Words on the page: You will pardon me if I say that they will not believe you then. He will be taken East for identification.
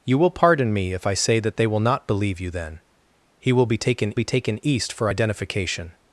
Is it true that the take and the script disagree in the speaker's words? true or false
true